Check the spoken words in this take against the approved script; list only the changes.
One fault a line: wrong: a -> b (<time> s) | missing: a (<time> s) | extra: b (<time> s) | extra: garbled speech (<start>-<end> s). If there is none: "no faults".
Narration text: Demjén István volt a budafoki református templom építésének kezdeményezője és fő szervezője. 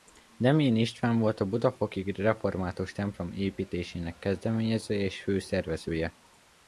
no faults